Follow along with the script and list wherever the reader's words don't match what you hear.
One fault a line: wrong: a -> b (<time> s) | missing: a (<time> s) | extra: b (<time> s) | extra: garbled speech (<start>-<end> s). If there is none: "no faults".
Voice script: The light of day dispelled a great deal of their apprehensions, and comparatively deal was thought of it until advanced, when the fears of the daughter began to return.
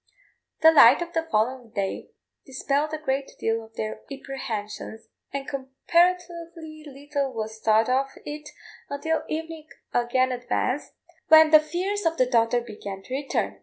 extra: the following (1.1 s)
wrong: deal -> little (6.9 s)
extra: evening again (9.3 s)